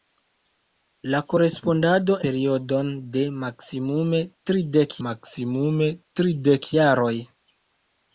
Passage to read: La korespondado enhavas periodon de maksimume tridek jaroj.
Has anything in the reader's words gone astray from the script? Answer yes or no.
yes